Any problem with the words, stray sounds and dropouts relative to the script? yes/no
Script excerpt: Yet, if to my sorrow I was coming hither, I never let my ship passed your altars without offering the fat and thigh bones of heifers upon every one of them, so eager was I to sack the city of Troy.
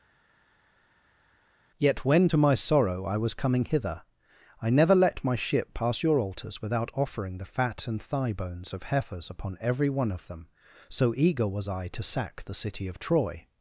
yes